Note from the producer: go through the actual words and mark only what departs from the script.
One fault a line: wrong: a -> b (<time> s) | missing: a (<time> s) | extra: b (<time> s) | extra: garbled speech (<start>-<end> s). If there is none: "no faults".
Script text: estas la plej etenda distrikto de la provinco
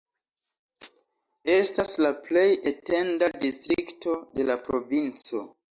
no faults